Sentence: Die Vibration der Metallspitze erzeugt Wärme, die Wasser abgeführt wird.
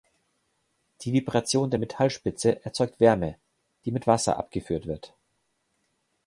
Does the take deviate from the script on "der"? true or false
false